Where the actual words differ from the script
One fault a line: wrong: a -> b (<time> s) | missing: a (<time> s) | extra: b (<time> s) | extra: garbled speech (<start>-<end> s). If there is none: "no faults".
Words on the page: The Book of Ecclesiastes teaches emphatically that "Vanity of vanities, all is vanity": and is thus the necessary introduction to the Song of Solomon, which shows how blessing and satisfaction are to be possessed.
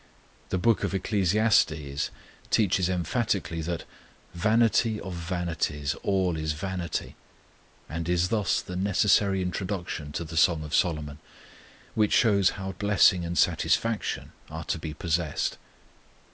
no faults